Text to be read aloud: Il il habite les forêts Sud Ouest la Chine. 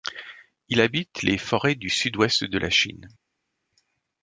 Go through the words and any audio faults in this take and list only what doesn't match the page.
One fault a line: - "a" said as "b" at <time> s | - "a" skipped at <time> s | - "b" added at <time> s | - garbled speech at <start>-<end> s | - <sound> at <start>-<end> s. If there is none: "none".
- "il" skipped at 0.8 s
- "du" added at 1.8 s
- "de" added at 2.4 s